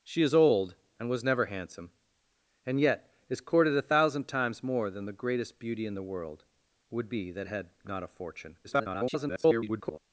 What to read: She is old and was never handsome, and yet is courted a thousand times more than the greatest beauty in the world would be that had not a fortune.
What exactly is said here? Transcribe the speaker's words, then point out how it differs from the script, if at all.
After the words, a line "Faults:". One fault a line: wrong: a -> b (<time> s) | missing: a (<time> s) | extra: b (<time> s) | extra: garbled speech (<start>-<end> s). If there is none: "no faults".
She is old and was never handsome, and yet is courted a thousand times more than the greatest beauty in the world would be that had not a fortune. [garbled]
Faults:
extra: garbled speech (8.6-10.0 s)